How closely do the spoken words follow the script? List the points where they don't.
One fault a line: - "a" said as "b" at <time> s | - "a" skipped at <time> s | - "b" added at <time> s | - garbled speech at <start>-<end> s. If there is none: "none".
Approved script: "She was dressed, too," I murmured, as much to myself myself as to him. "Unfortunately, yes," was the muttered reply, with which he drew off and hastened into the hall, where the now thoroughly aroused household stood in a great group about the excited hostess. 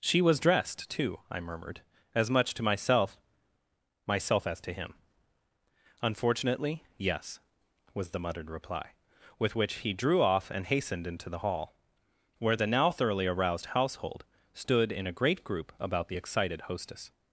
none